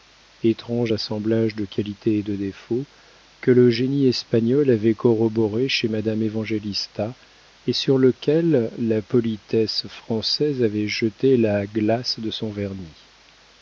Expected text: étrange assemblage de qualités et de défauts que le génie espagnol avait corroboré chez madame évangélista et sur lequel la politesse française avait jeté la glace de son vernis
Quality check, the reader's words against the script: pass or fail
pass